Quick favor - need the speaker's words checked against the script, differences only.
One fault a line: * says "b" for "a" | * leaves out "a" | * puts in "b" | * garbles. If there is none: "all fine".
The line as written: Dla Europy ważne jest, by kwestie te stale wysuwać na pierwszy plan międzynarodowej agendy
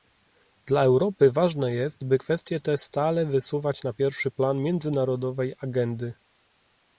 all fine